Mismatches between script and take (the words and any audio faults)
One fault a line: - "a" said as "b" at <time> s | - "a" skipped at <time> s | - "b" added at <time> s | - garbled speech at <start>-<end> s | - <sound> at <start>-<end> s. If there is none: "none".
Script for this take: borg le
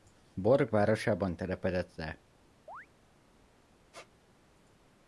- "városában telepedett" added at 0.7 s
- chirp at 2.7-2.9 s
- squeak at 3.9-4.1 s